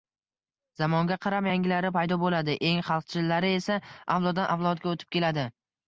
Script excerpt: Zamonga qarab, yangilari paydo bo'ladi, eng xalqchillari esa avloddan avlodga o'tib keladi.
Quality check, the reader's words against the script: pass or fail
pass